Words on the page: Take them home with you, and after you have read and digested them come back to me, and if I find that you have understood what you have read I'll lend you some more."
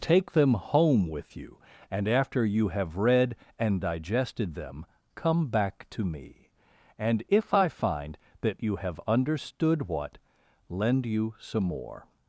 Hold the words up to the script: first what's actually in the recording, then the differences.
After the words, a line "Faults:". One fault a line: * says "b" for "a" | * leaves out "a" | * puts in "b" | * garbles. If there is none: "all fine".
Take them home with you, and after you have read and digested them come back to me, and if I find that you have understood what lend you some more."
Faults:
* leaves out "you have read I'll"